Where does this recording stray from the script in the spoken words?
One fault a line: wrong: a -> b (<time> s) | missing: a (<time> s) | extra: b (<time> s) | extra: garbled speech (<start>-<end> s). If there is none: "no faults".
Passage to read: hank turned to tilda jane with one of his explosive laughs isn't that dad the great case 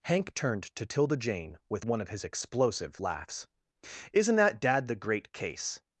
no faults